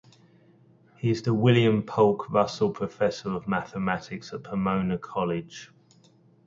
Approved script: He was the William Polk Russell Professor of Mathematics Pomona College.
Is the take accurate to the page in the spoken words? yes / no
no